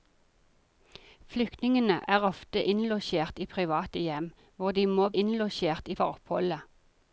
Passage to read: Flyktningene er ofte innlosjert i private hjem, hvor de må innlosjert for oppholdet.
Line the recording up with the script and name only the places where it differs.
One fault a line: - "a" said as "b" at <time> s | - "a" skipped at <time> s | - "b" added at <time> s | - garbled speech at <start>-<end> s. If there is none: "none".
none